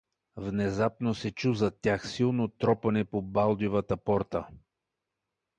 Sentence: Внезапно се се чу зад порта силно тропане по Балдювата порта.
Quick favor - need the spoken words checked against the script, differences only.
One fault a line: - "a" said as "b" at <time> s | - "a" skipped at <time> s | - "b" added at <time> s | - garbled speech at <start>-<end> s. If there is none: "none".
- "се" skipped at 1.3 s
- "порта" said as "тях" at 1.8 s